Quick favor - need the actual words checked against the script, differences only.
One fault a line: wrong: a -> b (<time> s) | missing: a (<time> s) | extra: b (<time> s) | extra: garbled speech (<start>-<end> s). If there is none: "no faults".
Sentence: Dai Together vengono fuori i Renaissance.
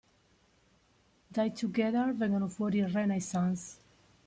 no faults